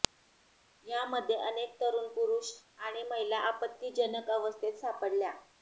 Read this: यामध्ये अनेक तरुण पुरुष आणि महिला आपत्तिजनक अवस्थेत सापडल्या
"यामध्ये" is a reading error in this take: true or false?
false